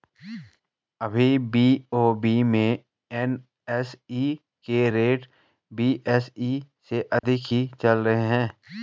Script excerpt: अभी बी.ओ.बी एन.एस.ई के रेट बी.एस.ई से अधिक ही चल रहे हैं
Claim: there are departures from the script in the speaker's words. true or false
true